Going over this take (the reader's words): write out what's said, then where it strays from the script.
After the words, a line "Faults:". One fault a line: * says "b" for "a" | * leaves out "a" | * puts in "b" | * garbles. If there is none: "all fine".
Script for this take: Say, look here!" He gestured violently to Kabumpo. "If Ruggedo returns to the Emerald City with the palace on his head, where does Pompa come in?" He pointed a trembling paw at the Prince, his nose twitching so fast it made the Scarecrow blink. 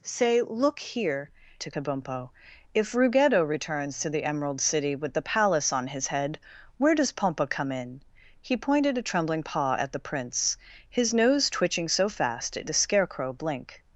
Say, look here!" To Kabumpo. "If Ruggedo returns to the Emerald City with the palace on his head, where does Pompa come in?" He pointed a trembling paw at the Prince, his nose twitching so fast it the Scarecrow blink.
Faults:
* leaves out "He gestured violently"
* leaves out "made"